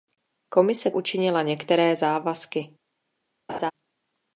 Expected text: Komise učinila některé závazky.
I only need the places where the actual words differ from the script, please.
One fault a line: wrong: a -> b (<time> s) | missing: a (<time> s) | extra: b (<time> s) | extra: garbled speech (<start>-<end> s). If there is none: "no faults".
no faults